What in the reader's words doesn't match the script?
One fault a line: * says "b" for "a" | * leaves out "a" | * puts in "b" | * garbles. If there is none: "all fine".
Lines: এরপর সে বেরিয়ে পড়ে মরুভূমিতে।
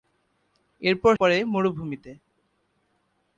* leaves out "সে বেরিয়ে"